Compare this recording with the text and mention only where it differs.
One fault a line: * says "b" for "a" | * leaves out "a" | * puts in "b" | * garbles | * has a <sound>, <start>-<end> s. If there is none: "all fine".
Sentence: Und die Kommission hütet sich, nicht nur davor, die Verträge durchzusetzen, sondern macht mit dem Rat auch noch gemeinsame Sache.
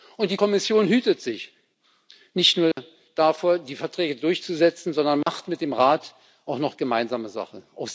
* has a dropout, 2.7-2.8 s
* has a dropout, 5.2-5.3 s